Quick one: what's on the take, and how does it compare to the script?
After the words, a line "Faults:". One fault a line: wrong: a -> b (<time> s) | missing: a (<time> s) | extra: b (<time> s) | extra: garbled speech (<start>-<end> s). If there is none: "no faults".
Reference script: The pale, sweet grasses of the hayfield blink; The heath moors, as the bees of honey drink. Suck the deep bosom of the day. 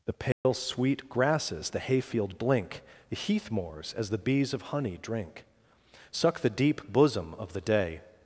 The pale, sweet grasses the hayfield blink; The heath moors, as the bees of honey drink. Suck the deep bosom of the day.
Faults:
missing: of (1.7 s)